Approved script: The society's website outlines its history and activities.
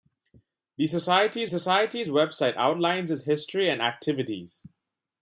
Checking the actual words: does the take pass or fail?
fail